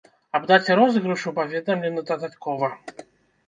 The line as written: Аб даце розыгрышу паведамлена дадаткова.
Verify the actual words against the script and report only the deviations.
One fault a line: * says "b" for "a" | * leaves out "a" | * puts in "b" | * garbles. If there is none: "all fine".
all fine